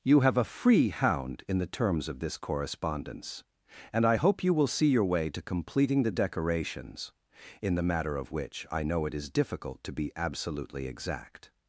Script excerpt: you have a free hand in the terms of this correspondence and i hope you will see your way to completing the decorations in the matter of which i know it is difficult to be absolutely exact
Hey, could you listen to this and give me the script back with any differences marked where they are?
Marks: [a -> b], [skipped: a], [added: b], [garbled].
you have a free [hand -> hound] in the terms of this correspondence and i hope you will see your way to completing the decorations in the matter of which i know it is difficult to be absolutely exact